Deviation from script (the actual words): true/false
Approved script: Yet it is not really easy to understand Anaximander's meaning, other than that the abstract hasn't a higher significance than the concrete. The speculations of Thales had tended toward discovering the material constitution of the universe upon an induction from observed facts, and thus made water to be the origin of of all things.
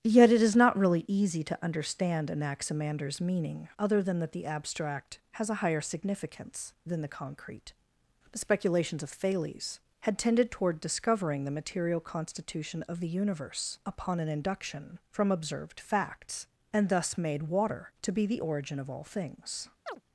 true